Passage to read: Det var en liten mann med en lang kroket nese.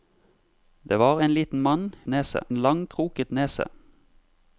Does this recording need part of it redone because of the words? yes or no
yes